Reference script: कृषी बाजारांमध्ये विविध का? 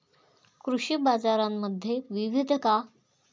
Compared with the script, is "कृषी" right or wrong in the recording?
right